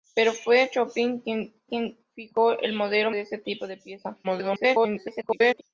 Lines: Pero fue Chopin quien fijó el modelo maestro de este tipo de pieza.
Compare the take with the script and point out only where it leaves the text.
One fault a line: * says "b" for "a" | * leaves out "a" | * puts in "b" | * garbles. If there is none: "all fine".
* puts in "quien"
* leaves out "maestro"
* garbles